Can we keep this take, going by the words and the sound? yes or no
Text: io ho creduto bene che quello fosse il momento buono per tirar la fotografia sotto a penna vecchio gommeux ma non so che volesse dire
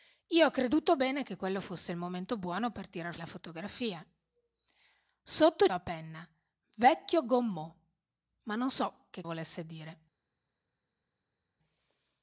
yes